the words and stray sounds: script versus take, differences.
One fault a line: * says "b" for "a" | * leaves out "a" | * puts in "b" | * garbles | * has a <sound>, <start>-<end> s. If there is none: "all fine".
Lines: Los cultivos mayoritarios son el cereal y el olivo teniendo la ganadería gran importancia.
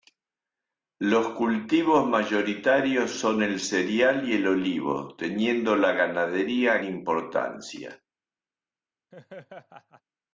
* leaves out "gran"
* has a laugh, 9.1-10.0 s